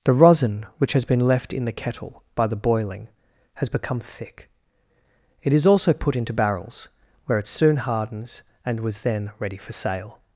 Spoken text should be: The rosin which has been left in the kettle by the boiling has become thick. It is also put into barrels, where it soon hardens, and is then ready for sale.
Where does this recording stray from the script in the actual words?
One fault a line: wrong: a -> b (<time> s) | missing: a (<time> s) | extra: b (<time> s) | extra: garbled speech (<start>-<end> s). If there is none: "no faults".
wrong: is -> was (8.8 s)